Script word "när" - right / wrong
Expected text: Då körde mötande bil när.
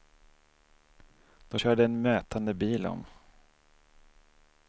wrong